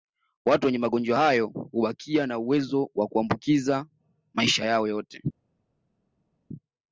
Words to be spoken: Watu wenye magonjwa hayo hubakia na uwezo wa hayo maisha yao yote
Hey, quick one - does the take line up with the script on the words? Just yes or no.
no